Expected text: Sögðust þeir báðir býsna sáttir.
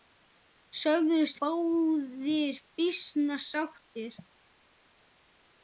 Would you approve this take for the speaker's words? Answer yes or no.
no